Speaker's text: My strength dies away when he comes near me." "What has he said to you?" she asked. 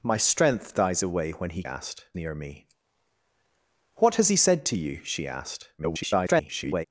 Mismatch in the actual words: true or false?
true